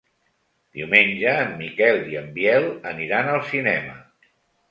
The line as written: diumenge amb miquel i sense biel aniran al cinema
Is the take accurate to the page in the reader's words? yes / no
no